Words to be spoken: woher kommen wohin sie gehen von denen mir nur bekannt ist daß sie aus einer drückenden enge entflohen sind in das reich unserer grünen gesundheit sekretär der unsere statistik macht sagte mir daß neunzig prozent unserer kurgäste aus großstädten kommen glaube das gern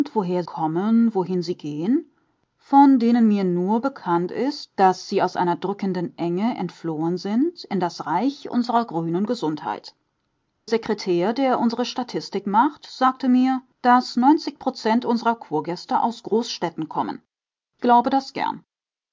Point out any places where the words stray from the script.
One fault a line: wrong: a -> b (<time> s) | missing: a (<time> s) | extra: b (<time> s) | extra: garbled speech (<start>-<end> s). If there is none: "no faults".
no faults